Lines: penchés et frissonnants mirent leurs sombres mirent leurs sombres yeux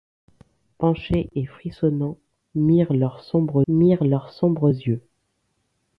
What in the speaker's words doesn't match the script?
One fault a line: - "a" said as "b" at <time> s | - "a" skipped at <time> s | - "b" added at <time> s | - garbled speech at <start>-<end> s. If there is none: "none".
none